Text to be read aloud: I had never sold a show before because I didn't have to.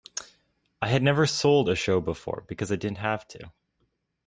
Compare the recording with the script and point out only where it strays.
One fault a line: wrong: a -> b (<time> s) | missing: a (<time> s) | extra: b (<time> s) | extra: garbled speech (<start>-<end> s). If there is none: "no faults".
no faults